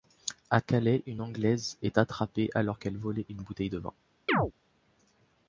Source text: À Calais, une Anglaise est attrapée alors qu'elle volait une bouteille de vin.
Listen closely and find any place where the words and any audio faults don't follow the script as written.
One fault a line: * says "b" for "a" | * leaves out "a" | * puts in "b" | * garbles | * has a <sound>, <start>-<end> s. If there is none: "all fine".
* has a chirp, 4.3-4.5 s